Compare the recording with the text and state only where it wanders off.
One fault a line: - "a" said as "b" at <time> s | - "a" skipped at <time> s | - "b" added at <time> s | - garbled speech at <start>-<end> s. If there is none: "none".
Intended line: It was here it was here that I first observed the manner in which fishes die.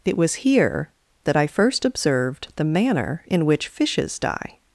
- "it was here" skipped at 0.9 s